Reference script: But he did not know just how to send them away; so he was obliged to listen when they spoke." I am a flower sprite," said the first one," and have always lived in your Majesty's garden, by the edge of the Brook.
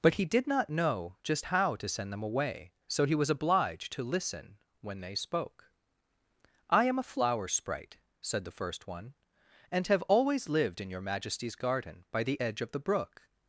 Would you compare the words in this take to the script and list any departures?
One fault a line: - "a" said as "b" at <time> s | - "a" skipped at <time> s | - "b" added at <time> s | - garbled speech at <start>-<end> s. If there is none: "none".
none